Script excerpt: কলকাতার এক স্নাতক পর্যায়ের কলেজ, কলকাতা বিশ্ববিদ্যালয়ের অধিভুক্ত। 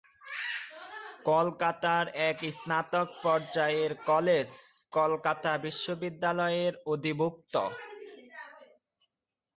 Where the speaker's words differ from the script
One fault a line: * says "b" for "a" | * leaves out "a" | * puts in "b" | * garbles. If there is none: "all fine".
all fine